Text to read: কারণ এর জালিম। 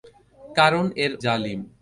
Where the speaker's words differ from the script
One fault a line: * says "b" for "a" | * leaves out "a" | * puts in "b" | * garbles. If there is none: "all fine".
all fine